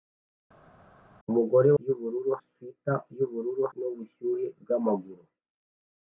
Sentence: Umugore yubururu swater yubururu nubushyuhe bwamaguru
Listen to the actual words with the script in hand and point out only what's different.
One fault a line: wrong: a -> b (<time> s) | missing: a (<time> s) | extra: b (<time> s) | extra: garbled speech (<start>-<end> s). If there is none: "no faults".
no faults